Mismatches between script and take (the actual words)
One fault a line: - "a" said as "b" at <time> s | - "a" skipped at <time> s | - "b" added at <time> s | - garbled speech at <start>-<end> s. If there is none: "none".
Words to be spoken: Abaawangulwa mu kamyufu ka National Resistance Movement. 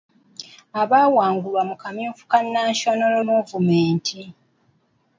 - "Resistance" skipped at 3.1 s